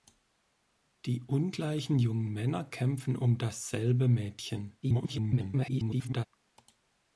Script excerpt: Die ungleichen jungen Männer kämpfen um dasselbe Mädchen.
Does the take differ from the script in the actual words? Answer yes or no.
yes